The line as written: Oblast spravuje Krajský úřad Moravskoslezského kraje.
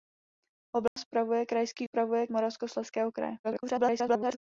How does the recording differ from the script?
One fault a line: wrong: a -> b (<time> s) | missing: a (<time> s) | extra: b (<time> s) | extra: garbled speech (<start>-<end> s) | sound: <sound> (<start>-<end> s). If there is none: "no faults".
sound: dropout (0.9-1.0 s)
wrong: úřad -> spravuje (1.8 s)
extra: garbled speech (3.4-4.4 s)